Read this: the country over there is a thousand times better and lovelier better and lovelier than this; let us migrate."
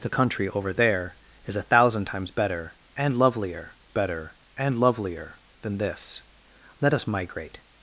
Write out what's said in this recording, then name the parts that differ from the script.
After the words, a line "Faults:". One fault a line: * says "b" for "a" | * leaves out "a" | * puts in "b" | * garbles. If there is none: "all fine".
the country over there is a thousand times better and lovelier better and lovelier than this; let us migrate."
Faults:
all fine